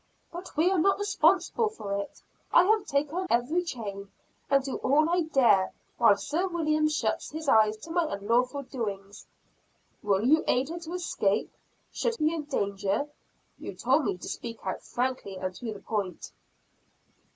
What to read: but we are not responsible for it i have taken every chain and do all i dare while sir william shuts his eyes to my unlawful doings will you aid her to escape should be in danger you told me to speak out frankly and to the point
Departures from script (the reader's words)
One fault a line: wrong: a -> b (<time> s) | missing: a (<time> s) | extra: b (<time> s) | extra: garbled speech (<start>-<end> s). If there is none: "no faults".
no faults